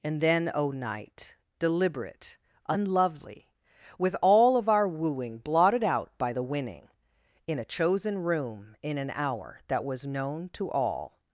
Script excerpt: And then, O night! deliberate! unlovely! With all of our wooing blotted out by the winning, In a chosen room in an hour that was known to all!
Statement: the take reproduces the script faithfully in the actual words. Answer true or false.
true